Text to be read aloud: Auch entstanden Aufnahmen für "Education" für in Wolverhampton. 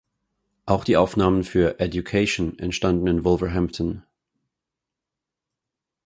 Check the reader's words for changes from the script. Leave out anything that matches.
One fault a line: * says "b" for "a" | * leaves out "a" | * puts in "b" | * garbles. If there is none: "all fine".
* says "die" for "entstanden"
* says "entstanden" for "für"